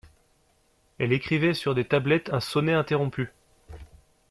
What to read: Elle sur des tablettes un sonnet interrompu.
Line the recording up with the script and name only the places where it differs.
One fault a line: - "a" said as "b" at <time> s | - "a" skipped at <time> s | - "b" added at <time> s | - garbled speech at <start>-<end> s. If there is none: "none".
- "écrivait" added at 1.1 s